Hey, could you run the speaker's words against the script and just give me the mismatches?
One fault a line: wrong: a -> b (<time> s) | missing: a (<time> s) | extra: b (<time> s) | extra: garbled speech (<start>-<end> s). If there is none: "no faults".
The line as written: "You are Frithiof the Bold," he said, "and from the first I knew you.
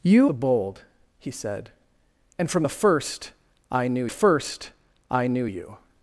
missing: are Frithiof (0.3 s)
extra: first I knew (4.1 s)